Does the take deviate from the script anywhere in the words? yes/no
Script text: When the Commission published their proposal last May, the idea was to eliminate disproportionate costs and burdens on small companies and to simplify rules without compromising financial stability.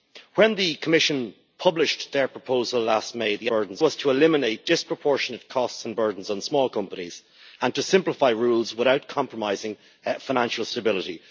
yes